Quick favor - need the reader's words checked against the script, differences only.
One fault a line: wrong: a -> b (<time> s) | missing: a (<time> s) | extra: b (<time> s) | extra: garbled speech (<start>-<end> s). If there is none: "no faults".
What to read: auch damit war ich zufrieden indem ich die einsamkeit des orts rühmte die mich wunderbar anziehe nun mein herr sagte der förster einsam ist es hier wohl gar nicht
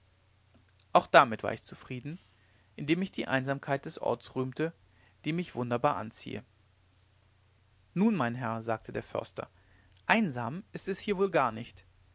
no faults